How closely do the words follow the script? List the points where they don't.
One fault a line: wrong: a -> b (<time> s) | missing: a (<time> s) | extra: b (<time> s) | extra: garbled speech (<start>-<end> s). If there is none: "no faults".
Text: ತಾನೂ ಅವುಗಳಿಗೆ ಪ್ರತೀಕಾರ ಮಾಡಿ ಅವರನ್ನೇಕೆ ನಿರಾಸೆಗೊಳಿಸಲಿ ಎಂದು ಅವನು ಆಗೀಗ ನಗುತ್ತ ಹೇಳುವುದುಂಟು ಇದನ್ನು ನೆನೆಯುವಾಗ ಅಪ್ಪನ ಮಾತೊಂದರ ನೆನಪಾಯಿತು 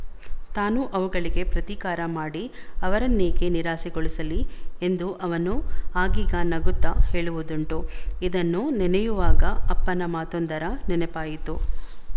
no faults